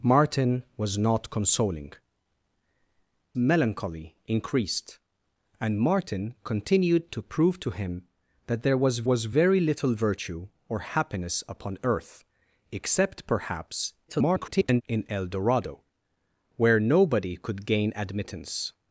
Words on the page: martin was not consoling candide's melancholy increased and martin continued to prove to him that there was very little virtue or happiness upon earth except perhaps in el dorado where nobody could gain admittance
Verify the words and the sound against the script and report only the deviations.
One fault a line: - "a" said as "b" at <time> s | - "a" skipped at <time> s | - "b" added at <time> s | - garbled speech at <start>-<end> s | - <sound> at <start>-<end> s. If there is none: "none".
- "candide's" skipped at 1.9 s
- "was" added at 9.0 s
- garbled speech at 14.1-14.8 s